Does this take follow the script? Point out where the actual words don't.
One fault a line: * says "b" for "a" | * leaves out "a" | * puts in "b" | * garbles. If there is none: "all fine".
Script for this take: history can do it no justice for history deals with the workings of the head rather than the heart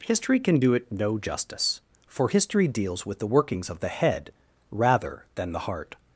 all fine